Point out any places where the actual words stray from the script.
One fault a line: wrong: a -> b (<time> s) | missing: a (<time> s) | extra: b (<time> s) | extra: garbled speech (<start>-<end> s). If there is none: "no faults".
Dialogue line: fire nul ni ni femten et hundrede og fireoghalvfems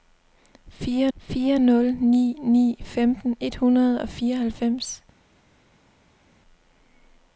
extra: fire (1.2 s)